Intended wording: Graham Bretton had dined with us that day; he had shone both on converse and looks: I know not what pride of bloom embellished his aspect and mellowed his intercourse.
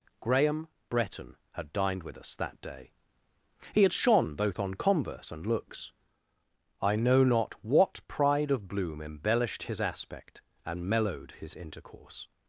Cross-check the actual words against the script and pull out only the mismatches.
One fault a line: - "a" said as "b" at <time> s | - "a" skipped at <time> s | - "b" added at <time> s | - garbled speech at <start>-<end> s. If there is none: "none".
none